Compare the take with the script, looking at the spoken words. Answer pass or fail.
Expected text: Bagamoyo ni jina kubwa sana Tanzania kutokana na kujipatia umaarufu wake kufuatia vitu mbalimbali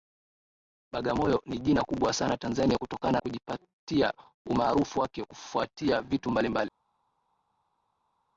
fail